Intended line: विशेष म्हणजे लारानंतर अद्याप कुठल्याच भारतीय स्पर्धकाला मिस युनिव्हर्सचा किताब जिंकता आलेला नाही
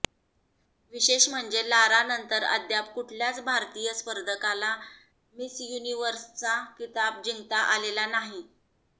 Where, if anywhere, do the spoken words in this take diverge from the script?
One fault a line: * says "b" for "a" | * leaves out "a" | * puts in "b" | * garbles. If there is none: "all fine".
all fine